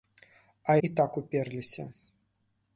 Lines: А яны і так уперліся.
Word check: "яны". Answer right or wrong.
wrong